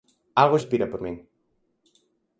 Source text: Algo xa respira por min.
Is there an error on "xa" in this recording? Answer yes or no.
yes